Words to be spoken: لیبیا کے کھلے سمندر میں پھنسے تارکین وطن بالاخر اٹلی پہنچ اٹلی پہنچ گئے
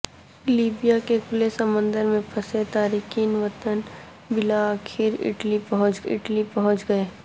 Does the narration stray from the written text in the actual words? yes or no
no